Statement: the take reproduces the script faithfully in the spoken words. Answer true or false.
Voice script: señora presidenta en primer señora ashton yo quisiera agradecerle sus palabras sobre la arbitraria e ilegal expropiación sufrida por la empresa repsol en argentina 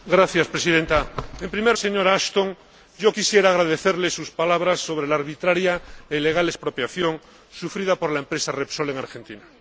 true